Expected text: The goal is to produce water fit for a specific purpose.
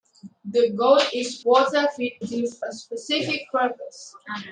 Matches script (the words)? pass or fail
fail